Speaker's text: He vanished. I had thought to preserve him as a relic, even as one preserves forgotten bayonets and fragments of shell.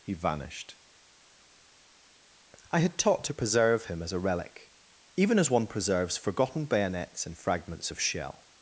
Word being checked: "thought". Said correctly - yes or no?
no